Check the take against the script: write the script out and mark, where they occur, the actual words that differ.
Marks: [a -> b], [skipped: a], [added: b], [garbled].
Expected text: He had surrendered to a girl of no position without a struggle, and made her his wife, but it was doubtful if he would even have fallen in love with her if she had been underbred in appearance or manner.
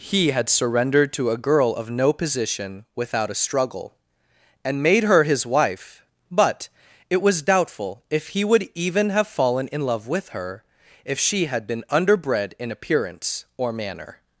He had surrendered to a girl of no position without a struggle, and made her his wife, but it was doubtful if he would even have fallen in love with her if she had been underbred in appearance or manner.